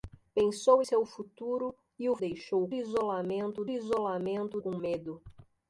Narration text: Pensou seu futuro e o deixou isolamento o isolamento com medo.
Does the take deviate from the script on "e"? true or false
false